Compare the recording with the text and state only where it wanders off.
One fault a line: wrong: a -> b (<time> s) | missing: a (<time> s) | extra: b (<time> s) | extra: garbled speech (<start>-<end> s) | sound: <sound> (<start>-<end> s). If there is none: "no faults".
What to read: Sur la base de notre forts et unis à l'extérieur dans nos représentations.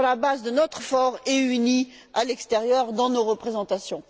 no faults